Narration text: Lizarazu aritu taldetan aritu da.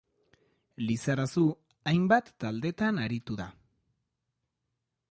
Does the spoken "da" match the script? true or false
true